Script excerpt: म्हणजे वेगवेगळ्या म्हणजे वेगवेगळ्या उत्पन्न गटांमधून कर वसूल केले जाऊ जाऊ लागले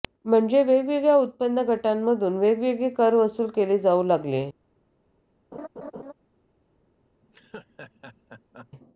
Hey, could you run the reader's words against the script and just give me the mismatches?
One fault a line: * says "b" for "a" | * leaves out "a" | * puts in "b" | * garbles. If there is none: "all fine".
* leaves out "म्हणजे वेगवेगळ्या"
* puts in "वेगवेगळे"
* leaves out "जाऊ"